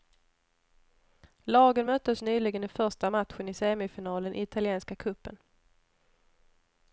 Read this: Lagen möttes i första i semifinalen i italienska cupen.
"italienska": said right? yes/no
yes